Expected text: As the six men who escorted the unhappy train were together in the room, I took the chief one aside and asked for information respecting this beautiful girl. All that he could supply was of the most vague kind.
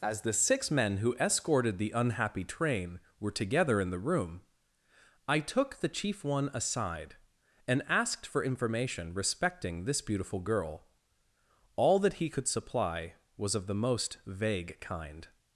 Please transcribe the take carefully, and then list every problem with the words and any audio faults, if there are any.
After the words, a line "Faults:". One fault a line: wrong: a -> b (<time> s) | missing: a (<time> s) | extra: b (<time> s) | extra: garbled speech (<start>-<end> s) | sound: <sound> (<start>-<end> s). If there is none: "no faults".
As the six men who escorted the unhappy train were together in the room, I took the chief one aside and asked for information respecting this beautiful girl. All that he could supply was of the most vague kind.
Faults:
no faults